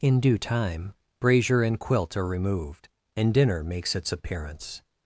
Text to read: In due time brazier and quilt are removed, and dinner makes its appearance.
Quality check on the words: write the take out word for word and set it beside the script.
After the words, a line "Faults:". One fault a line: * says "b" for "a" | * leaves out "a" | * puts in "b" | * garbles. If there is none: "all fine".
In due time brazier and quilt are removed, and dinner makes its appearance.
Faults:
all fine